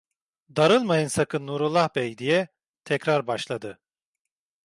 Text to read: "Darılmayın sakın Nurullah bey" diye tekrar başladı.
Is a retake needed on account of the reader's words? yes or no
no